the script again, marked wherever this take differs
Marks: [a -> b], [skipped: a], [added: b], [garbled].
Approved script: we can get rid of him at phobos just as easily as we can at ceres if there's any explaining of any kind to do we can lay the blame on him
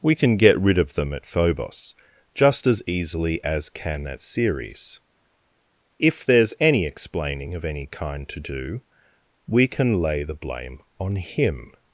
we can get rid of [him -> them] at phobos just as easily as [skipped: we] can at ceres if there's any explaining of any kind to do we can lay the blame on him